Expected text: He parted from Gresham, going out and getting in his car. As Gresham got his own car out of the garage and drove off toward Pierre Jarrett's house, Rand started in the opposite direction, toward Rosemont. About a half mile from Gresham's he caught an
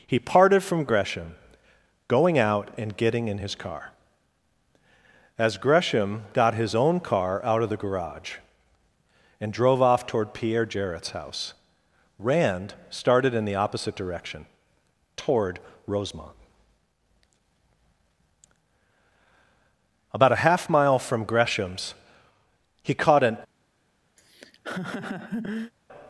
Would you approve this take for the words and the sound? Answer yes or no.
no